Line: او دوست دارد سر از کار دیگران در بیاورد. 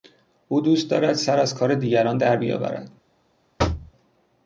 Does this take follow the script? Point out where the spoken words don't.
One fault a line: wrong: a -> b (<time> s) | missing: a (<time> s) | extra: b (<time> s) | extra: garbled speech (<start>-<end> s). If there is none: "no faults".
no faults